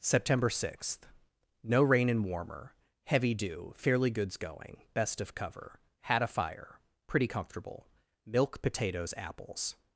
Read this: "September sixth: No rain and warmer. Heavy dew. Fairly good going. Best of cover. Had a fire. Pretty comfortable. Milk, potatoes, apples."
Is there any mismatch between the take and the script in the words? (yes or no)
yes